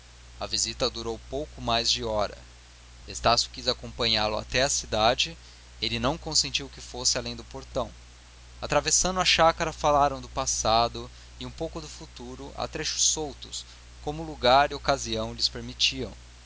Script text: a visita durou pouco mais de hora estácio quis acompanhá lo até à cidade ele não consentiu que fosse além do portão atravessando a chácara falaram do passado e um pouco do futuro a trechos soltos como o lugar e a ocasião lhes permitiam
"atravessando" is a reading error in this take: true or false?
false